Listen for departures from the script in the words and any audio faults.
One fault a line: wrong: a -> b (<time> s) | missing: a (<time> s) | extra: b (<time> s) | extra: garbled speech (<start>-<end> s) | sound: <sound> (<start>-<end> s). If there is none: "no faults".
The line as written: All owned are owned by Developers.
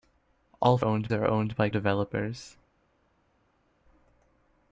no faults